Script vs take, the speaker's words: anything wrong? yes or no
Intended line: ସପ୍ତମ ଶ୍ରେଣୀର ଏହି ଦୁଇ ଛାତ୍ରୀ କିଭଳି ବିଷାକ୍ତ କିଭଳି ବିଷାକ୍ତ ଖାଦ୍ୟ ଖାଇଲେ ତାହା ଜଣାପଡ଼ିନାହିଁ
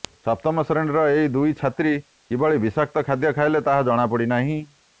yes